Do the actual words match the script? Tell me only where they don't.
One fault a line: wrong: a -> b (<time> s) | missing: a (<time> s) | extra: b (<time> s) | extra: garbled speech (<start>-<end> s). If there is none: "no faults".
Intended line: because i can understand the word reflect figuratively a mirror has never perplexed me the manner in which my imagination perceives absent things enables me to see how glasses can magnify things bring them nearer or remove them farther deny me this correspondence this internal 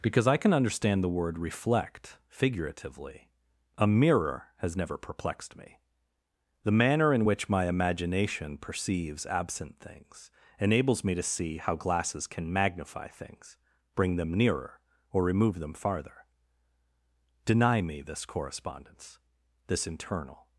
no faults